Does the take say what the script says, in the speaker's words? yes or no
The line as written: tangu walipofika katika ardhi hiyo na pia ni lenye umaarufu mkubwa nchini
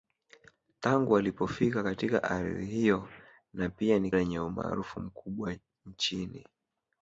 yes